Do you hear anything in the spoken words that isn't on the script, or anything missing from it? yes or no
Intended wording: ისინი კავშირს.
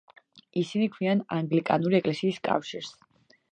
yes